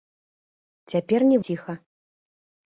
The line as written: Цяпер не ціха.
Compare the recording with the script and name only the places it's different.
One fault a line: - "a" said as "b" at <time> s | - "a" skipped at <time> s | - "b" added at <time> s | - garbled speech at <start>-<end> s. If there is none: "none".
none